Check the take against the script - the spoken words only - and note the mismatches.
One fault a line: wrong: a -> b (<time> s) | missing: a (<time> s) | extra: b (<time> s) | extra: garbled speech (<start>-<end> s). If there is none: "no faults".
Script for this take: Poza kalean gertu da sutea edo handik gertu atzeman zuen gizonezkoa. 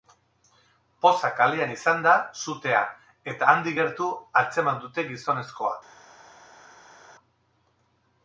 wrong: gertu -> izan (1.7 s)
wrong: edo -> eta (3.4 s)
wrong: zuen -> dute (4.8 s)